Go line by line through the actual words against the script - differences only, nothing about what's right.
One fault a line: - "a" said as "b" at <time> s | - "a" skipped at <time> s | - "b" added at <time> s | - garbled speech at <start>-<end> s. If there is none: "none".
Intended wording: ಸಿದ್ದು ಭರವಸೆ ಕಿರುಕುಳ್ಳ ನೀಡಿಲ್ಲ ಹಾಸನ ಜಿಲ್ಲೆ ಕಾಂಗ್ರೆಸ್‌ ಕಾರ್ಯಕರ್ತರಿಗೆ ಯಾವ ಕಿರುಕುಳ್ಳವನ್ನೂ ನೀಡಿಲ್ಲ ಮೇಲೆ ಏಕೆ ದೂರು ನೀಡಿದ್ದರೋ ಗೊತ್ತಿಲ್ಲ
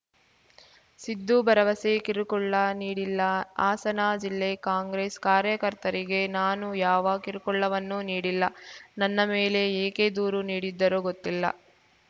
- "ನಾನು" added at 6.4 s
- "ನನ್ನ" added at 9.0 s